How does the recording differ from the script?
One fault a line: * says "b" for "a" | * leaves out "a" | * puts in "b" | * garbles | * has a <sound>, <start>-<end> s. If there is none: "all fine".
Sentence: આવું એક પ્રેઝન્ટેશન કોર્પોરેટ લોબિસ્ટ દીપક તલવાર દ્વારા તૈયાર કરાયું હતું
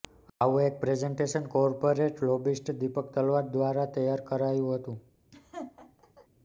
* has a laugh, 5.3-6.3 s